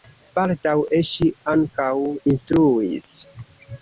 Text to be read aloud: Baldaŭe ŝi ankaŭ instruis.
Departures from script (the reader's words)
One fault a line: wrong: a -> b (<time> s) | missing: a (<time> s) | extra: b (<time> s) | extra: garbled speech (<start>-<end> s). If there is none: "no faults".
no faults